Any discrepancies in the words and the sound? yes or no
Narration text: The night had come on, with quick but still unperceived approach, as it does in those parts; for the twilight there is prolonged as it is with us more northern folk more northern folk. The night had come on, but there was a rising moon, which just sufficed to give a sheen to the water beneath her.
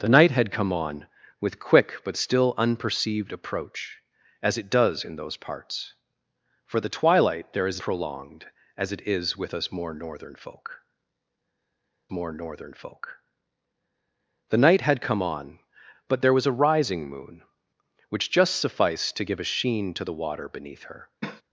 yes